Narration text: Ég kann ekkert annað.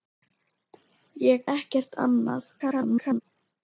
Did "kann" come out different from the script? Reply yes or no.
yes